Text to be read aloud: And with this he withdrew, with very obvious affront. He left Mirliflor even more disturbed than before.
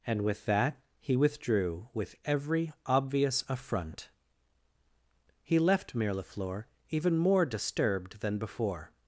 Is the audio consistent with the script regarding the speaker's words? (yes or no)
no